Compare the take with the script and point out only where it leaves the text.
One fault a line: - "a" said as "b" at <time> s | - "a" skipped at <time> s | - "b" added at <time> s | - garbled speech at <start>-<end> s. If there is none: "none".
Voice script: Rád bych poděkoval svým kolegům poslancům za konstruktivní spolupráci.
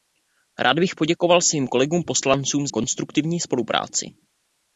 - "za" skipped at 2.7 s